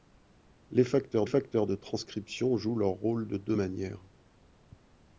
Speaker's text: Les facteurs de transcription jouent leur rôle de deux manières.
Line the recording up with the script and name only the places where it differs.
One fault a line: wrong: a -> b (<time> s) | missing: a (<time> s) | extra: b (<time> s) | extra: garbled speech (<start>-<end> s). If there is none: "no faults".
extra: facteurs (1.2 s)